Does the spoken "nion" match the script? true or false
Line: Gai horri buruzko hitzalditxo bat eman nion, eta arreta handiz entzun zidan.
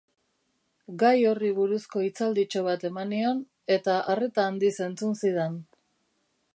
true